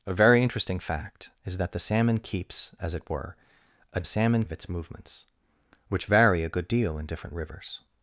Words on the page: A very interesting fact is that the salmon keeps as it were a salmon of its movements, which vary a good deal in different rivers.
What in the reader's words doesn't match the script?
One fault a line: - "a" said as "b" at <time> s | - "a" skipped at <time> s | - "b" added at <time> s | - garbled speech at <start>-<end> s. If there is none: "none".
none